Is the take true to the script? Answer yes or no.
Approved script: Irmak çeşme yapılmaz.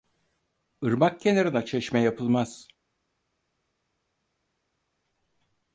no